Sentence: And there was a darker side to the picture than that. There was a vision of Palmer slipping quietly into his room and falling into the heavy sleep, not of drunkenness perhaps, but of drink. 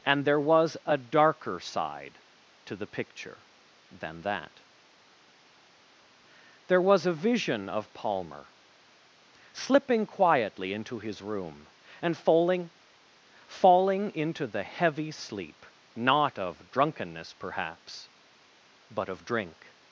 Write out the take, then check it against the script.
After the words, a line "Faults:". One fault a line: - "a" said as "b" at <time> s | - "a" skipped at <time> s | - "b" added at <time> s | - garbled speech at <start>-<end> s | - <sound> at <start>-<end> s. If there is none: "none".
And there was a darker side to the picture than that. There was a vision of Palmer slipping quietly into his room and falling falling into the heavy sleep, not of drunkenness perhaps, but of drink.
Faults:
- "falling" added at 13.5 s